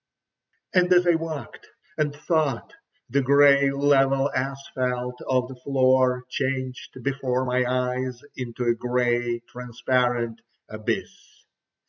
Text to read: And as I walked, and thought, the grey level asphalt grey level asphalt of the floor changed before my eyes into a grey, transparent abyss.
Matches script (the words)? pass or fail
fail